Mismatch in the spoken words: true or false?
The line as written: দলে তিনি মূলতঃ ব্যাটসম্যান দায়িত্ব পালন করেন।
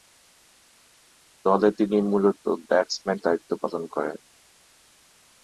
false